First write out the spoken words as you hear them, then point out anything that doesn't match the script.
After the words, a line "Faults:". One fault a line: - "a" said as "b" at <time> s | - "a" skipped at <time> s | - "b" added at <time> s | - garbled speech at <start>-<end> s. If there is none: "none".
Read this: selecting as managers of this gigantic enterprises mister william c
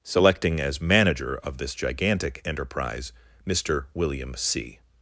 selecting as manager of this gigantic enterprise mister william c
Faults:
- "managers" said as "manager" at 0.8 s
- "enterprises" said as "enterprise" at 2.5 s